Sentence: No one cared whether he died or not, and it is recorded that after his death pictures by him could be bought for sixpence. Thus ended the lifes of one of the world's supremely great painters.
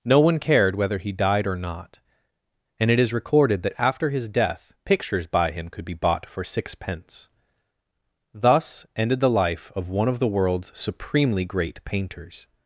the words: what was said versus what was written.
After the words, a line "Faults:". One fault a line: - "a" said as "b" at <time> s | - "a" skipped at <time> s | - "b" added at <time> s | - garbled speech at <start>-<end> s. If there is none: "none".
No one cared whether he died or not, and it is recorded that after his death pictures by him could be bought for sixpence. Thus ended the life of one of the world's supremely great painters.
Faults:
- "lifes" said as "life" at 9.3 s